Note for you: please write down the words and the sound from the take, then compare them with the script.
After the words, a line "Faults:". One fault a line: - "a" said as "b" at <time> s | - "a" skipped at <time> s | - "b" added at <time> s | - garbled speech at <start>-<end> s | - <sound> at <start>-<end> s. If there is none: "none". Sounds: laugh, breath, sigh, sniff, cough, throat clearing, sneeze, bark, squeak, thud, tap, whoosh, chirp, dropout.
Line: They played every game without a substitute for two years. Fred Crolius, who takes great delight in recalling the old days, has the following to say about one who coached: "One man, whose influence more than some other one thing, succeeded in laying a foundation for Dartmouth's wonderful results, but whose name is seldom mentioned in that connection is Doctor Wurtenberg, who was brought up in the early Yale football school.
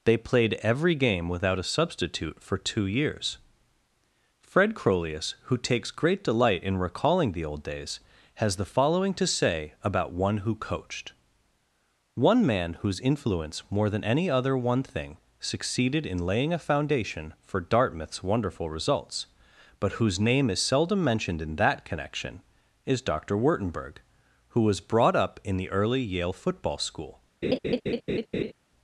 They played every game without a substitute for two years. Fred Crolius, who takes great delight in recalling the old days, has the following to say about one who coached: "One man, whose influence more than any other one thing, succeeded in laying a foundation for Dartmouth's wonderful results, but whose name is seldom mentioned in that connection is Doctor Wurtenberg, who was brought up in the early Yale football school.
Faults:
- "some" said as "any" at 14.0 s
- laugh at 27.4-28.5 s